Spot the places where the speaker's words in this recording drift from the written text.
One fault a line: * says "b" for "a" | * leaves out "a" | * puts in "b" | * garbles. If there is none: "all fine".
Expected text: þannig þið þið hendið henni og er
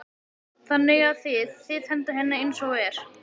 * puts in "að"
* puts in "eins"